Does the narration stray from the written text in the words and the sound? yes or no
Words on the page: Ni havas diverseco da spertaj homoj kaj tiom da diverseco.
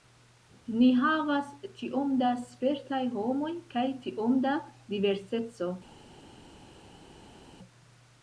yes